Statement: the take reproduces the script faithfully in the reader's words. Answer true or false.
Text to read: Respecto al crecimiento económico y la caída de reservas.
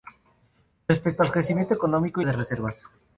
false